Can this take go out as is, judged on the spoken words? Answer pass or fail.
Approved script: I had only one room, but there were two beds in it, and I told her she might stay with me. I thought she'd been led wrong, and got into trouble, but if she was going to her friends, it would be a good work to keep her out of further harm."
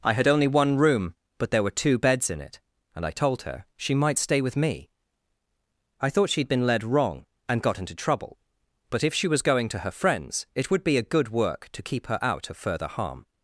pass